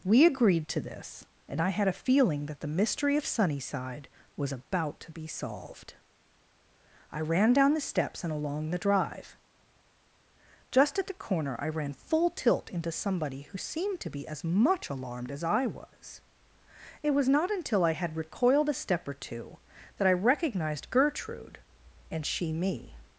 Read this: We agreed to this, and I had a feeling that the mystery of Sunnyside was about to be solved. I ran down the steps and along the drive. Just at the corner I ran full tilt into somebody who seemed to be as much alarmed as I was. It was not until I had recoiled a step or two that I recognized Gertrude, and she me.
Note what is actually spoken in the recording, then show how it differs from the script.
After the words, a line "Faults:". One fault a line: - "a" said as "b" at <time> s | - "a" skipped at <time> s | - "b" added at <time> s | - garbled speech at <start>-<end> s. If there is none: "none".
We agreed to this, and I had a feeling that the mystery of Sunnyside was about to be solved. I ran down the steps and along the drive. Just at the corner I ran full tilt into somebody who seemed to be as much alarmed as I was. It was not until I had recoiled a step or two that I recognized Gertrude, and she me.
Faults:
none